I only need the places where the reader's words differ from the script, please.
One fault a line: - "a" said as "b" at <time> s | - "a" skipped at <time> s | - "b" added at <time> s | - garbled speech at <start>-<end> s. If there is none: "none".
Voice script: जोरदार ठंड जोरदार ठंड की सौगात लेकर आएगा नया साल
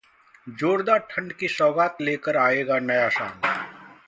- "जोरदार ठंड" skipped at 1.3 s